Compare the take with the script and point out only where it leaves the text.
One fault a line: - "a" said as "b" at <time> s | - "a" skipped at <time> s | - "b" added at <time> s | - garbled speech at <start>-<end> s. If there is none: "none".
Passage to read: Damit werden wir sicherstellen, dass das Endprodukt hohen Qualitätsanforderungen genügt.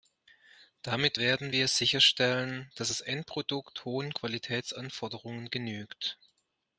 none